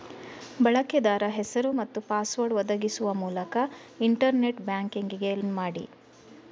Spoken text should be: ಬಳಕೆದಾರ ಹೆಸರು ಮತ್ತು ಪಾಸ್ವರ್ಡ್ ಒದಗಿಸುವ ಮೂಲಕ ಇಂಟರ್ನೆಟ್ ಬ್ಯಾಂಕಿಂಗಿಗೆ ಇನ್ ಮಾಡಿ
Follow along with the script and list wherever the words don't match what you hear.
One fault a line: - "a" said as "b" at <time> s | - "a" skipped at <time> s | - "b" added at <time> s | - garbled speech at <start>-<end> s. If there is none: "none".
none